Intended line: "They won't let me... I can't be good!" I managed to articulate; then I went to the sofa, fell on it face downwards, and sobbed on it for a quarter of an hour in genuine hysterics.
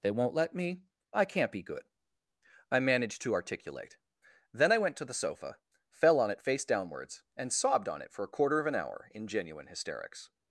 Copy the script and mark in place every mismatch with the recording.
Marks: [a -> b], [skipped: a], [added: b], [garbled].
"They won't let me... I can't be good!" I managed to articulate; then I went to the sofa, fell on it face downwards, and sobbed on it for a quarter of an hour in genuine hysterics.